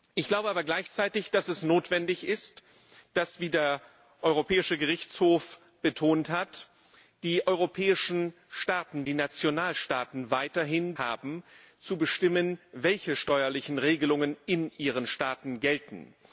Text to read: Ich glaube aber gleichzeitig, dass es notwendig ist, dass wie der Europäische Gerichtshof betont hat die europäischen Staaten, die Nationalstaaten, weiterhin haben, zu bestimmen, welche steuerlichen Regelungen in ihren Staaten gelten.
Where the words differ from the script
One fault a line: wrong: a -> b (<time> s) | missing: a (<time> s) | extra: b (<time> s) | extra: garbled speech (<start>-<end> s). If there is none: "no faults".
no faults